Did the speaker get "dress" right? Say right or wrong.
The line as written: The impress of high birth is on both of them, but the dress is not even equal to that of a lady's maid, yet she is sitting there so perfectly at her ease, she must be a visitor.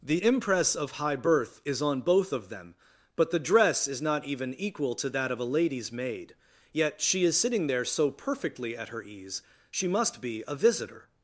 right